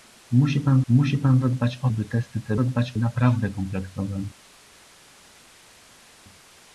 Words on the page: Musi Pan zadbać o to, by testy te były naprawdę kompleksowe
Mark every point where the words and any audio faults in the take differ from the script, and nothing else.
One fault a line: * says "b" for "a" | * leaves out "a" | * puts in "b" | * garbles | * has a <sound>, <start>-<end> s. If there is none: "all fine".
* puts in "musi Pan"
* leaves out "to"
* says "zadbać" for "były"